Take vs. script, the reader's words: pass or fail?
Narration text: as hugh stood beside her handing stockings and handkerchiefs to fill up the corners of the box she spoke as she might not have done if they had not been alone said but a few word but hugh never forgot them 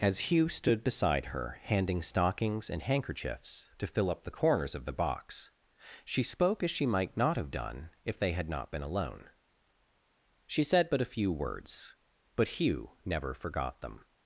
fail